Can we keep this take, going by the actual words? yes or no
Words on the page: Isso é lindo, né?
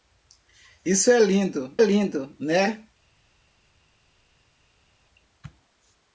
no